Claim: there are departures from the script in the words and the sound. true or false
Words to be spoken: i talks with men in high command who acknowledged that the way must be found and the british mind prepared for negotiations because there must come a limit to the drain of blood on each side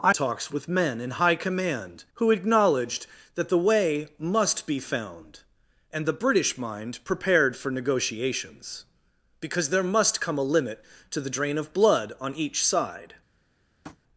true